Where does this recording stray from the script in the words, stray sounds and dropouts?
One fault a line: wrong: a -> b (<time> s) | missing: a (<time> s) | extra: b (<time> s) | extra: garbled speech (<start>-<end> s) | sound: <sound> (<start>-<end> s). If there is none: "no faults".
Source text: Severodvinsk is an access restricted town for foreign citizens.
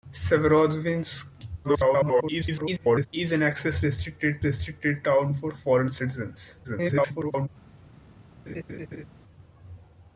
extra: garbled speech (1.6-3.1 s)
extra: restricted (4.4 s)
extra: garbled speech (6.6-7.5 s)
sound: laugh (8.5-9.1 s)